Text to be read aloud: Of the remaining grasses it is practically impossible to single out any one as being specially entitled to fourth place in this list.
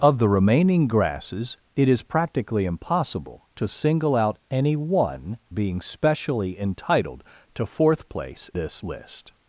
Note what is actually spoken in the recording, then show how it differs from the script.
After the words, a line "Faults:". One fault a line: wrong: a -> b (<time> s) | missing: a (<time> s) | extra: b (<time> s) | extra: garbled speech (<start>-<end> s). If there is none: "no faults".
Of the remaining grasses it is practically impossible to single out any one being specially entitled to fourth place this list.
Faults:
missing: as (5.4 s)
missing: in (8.5 s)